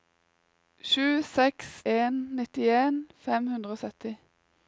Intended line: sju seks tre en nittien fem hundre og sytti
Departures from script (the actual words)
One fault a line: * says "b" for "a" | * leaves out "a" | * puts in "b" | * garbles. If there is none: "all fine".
* leaves out "tre"